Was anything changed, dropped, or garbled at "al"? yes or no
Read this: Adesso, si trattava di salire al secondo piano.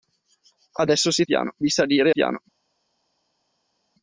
yes